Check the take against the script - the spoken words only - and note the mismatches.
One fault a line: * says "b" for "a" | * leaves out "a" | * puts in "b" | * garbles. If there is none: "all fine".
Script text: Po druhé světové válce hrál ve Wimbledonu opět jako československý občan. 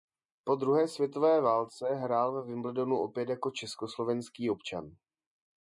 all fine